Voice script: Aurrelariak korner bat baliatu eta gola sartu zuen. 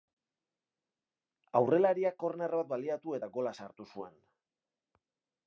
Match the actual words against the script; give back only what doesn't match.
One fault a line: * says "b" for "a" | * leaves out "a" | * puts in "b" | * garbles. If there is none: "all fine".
all fine